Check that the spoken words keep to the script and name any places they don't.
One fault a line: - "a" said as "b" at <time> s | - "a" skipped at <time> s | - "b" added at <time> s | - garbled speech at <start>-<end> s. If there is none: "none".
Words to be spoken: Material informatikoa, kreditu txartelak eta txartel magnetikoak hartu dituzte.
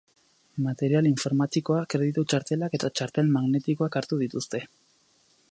none